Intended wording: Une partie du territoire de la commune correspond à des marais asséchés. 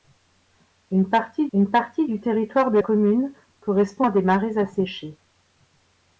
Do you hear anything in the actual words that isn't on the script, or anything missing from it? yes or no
yes